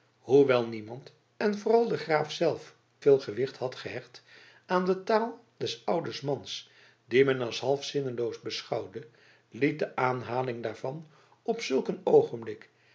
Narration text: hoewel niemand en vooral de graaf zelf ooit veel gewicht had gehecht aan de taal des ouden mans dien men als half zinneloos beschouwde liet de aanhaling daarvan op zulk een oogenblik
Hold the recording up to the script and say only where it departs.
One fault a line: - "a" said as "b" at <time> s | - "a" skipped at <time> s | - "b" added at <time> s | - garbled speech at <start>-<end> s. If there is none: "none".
- "ooit" skipped at 2.8 s